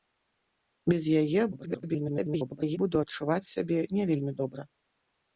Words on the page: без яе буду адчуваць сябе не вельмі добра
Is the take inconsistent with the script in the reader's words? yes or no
yes